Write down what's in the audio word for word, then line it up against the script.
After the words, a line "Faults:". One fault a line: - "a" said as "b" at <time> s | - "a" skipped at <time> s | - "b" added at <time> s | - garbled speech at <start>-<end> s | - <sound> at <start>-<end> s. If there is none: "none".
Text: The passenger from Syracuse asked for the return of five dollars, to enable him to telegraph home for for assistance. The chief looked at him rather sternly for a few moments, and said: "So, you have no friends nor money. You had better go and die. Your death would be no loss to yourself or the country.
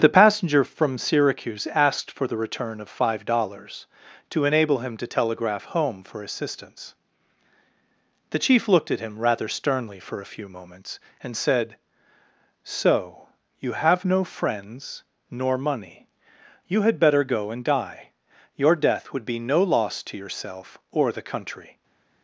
The passenger from Syracuse asked for the return of five dollars, to enable him to telegraph home for assistance. The chief looked at him rather sternly for a few moments, and said: "So, you have no friends nor money. You had better go and die. Your death would be no loss to yourself or the country.
Faults:
- "for" skipped at 6.2 s